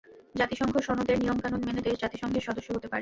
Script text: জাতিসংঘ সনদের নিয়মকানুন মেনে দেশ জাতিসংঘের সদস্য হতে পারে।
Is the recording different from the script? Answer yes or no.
no